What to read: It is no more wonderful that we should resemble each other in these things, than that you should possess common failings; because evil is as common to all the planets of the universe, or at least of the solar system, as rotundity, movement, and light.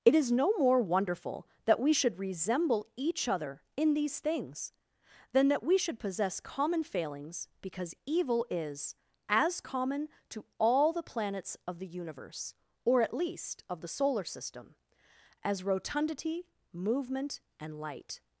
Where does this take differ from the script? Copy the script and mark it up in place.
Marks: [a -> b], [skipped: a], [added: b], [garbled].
It is no more wonderful that we should resemble each other in these things, than that [you -> we] should possess common failings; because evil is as common to all the planets of the universe, or at least of the solar system, as rotundity, movement, and light.